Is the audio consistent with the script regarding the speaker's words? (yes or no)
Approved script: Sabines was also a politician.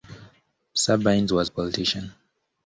no